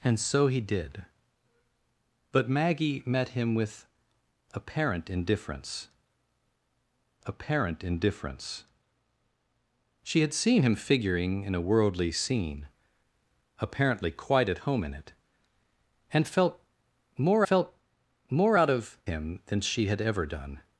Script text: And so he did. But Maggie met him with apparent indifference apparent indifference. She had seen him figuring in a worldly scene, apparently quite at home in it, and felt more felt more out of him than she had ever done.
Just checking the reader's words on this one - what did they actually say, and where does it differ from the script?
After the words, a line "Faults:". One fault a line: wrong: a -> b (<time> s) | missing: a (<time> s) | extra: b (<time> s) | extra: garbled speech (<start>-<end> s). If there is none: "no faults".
And so he did. But Maggie met him with apparent indifference apparent indifference. She had seen him figuring in a worldly scene, apparently quite at home in it, and felt more felt more out of him than she had ever done.
Faults:
no faults